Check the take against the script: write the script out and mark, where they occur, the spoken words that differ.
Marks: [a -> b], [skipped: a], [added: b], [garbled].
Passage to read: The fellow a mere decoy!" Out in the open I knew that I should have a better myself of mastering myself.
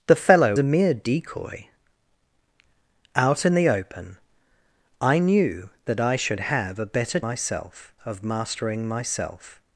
The fellow a mere decoy!" Out in the open I knew that I should have a better myself of mastering myself.